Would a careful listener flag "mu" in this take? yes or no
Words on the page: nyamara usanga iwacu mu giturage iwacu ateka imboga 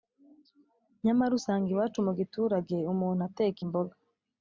no